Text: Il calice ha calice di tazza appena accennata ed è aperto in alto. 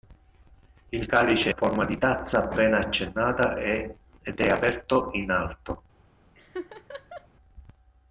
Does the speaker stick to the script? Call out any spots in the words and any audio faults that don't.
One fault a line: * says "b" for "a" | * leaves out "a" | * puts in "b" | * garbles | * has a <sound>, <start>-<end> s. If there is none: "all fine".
* says "forma" for "calice"
* has a laugh, 6.4-7.3 s